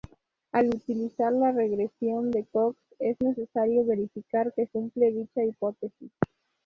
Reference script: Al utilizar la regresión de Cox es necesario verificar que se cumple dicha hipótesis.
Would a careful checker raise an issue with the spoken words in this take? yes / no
yes